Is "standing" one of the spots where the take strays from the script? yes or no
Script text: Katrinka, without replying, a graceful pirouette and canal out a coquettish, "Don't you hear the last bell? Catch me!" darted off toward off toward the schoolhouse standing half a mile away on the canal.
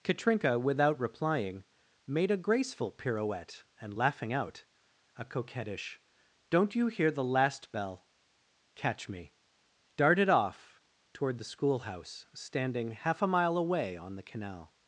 no